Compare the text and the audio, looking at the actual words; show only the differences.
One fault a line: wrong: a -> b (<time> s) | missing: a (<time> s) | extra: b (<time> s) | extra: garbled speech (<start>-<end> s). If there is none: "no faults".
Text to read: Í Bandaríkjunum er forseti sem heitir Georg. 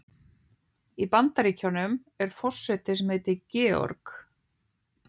no faults